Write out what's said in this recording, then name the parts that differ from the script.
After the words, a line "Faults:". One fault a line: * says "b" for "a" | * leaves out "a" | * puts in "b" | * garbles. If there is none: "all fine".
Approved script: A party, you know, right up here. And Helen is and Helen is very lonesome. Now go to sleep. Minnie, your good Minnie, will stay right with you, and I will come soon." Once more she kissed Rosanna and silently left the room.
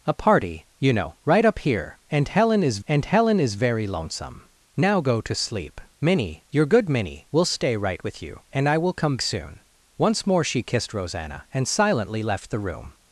A party, you know, right up here. And Helen is and Helen is very lonesome. Now go to sleep. Minnie, your good Minnie, will stay right with you, and I will come soon." Once more she kissed Rosanna and silently left the room.
Faults:
all fine